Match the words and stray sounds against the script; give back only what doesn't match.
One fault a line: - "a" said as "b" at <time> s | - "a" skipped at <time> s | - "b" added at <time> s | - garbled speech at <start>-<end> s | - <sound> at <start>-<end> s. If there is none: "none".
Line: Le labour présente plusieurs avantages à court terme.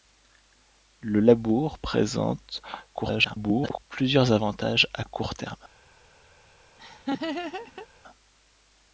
- garbled speech at 2.9-3.8 s
- laugh at 6.8-7.9 s